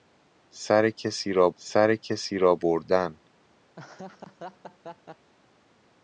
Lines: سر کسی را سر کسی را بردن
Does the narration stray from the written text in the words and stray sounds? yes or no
yes